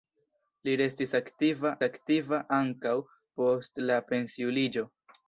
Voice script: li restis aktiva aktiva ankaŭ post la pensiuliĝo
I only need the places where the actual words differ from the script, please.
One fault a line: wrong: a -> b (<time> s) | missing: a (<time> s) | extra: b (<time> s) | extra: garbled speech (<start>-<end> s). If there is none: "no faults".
no faults